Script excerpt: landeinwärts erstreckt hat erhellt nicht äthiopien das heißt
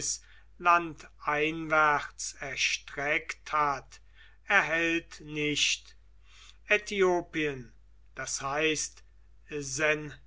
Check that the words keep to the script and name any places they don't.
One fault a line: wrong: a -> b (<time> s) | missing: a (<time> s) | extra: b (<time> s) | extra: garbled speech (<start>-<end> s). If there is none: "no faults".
no faults